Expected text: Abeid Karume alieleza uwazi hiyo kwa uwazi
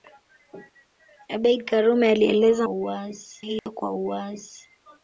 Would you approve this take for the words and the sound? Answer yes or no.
no